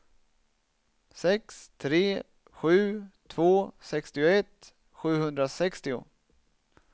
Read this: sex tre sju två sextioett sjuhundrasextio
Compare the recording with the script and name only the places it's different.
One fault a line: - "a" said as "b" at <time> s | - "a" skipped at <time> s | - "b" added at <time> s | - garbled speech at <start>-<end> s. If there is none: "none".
none